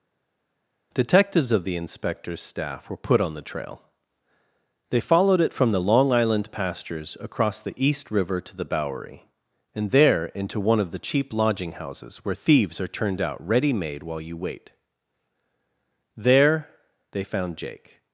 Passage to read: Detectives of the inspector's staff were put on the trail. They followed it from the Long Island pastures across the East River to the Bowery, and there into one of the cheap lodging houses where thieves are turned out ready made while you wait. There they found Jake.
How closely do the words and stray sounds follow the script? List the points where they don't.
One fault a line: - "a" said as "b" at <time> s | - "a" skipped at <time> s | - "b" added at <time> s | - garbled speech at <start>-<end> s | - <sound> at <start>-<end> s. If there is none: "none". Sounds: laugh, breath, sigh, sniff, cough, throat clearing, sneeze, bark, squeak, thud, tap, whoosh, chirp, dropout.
none